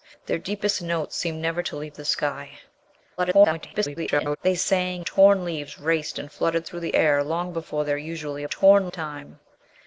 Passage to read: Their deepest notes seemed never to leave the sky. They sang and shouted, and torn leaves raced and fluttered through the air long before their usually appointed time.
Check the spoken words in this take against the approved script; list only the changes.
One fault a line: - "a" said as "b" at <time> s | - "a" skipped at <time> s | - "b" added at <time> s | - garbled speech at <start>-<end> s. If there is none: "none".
- garbled speech at 3.2-4.4 s
- "and shouted and" skipped at 5.0 s
- "appointed" said as "torn" at 8.5 s